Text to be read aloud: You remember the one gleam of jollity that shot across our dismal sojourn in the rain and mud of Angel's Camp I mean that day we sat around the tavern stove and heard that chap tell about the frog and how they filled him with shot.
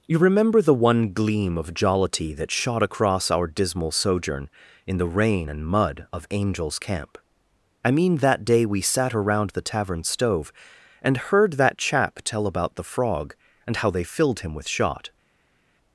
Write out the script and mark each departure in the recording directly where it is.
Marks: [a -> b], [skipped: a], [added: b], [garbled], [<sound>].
You remember the one gleam of jollity that shot across our dismal sojourn in the rain and mud of Angel's Camp I mean that day we sat around the tavern stove and heard that chap tell about the frog and how they filled him with shot.